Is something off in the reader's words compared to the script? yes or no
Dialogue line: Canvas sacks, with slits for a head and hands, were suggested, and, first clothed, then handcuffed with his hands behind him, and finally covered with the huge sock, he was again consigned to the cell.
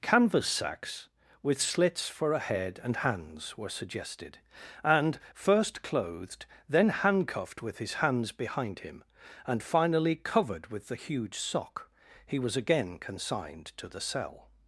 no